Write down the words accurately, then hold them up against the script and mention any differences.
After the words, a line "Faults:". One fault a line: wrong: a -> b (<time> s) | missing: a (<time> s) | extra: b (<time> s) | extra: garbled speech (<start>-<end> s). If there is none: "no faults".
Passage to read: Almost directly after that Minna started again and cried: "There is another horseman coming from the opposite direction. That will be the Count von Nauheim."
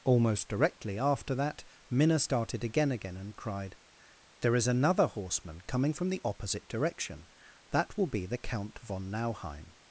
Almost directly after that Minna started again again and cried: "There is another horseman coming from the opposite direction. That will be the Count von Nauheim."
Faults:
extra: again (2.9 s)